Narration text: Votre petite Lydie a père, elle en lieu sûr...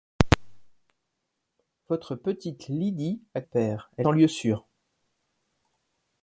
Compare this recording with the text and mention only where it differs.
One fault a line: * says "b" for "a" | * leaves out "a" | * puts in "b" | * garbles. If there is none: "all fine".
all fine